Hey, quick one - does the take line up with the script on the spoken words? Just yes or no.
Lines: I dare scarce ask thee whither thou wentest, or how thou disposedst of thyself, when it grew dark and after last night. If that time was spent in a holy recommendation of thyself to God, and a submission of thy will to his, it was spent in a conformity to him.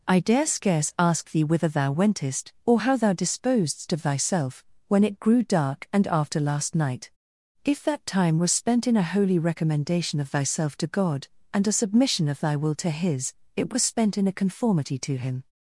yes